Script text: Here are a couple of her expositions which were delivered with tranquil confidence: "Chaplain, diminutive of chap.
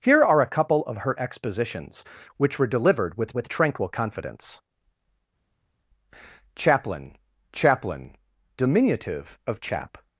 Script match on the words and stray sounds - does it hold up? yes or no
no